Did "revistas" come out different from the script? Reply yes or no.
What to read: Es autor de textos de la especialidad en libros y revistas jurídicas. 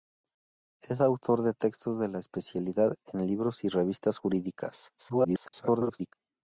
no